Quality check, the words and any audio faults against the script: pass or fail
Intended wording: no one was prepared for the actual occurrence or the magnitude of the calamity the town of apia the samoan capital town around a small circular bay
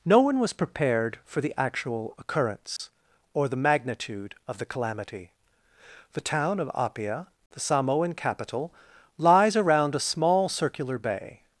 fail